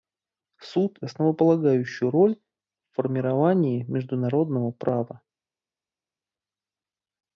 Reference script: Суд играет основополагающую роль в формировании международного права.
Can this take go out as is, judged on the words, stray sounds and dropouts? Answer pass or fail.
fail